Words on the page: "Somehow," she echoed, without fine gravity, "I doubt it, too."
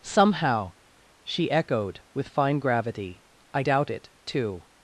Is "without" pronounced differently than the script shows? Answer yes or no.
yes